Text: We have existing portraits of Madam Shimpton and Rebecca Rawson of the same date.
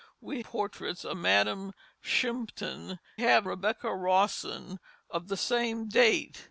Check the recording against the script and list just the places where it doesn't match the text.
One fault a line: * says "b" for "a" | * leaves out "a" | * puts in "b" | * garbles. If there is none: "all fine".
* leaves out "have existing"
* says "have" for "and"